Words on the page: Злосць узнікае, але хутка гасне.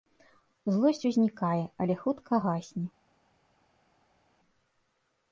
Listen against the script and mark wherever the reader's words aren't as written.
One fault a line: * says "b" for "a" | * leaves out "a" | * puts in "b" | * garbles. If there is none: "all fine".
all fine